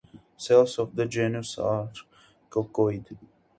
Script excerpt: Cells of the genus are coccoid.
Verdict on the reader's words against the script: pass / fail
pass